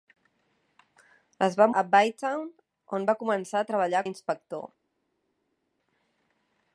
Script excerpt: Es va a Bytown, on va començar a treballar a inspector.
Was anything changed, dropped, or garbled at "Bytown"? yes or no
no